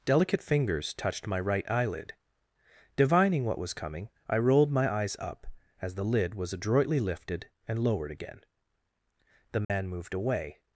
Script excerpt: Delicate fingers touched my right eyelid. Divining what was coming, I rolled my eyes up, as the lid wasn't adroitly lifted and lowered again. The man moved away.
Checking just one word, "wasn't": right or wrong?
wrong